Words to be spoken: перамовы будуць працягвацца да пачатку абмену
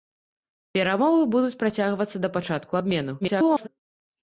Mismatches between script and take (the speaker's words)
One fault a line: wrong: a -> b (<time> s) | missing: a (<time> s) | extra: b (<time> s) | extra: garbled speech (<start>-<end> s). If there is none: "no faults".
extra: garbled speech (3.2-3.7 s)